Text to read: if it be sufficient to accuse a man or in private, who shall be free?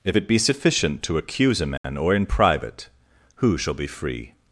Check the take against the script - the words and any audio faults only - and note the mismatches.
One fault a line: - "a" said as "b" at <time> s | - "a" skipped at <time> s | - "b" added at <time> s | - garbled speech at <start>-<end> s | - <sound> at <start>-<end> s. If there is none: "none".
- dropout at 1.8-1.8 s